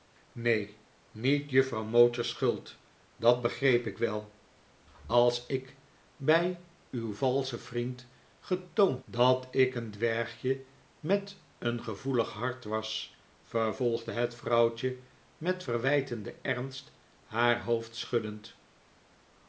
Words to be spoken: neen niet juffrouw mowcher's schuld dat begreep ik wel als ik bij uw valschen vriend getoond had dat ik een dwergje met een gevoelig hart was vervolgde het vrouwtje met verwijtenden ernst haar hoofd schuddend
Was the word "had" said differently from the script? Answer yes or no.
yes